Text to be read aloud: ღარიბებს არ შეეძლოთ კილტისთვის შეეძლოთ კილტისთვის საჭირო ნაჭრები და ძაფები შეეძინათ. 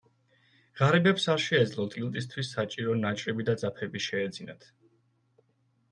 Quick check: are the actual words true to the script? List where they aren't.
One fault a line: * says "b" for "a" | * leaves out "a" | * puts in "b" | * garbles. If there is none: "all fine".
* leaves out "შეეძლოთ კილტისთვის"